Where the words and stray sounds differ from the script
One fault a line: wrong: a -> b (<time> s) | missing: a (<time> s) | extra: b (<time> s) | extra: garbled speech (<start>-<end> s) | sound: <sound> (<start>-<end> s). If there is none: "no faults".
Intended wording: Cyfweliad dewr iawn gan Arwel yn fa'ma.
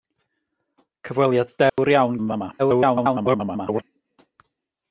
sound: dropout (1.7-1.8 s)
missing: gan Arwel (2.2 s)
extra: garbled speech (2.6-3.8 s)